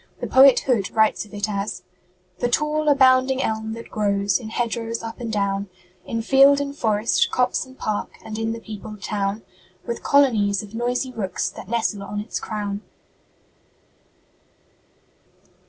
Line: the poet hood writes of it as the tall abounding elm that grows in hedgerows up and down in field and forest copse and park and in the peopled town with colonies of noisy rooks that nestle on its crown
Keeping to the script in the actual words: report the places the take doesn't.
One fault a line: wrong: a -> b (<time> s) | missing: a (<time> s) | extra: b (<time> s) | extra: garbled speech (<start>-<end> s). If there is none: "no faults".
no faults